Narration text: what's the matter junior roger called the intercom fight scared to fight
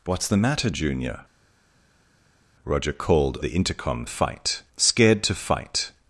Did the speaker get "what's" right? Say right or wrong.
right